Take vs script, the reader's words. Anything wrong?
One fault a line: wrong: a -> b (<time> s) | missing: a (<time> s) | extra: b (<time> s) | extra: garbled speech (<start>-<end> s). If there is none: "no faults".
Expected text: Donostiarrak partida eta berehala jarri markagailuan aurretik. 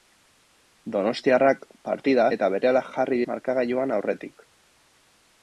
no faults